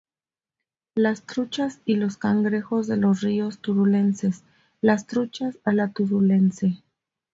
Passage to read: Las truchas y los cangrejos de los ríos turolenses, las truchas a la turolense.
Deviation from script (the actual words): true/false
false